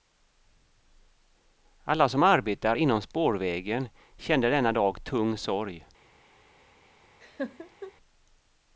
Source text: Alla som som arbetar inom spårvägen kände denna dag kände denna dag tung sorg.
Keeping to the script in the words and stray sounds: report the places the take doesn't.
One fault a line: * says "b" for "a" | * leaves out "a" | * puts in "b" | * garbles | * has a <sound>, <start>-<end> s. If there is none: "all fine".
* leaves out "som"
* leaves out "kände denna dag"
* has a laugh, 7.2-7.9 s